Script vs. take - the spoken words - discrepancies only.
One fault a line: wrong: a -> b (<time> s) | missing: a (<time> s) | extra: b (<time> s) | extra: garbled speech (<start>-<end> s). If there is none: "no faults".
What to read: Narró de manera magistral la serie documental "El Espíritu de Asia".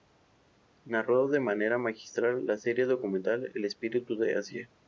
no faults